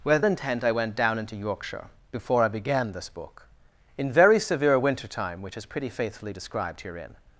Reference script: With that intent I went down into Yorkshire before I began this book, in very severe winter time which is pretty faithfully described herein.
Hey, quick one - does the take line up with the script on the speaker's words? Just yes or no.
no